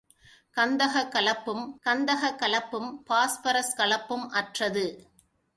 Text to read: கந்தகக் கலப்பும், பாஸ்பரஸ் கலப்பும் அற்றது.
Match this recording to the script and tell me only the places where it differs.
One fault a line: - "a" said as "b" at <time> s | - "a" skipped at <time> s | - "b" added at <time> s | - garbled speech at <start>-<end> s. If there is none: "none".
- "கந்தகக் கலப்பும்" added at 1.8 s